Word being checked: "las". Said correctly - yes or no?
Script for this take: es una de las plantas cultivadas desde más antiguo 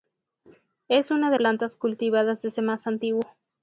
no